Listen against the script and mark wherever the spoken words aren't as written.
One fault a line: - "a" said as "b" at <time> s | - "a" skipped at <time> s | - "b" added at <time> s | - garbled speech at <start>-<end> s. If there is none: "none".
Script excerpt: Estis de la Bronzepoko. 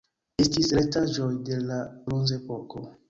- "restaĵoj" added at 0.8 s